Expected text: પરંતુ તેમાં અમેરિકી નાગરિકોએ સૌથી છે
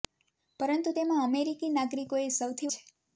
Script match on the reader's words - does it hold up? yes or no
yes